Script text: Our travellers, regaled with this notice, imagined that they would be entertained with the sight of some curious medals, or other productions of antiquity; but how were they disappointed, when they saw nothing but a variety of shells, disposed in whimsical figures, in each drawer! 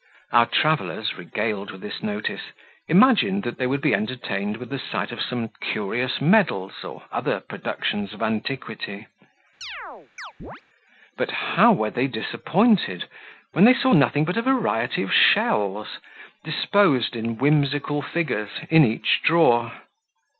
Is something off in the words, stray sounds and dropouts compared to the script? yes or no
yes